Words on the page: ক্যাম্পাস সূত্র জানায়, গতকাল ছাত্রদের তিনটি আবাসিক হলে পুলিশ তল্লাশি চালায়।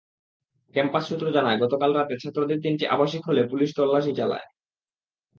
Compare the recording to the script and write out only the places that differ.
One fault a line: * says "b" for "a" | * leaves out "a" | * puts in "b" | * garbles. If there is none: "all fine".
* puts in "রাতে"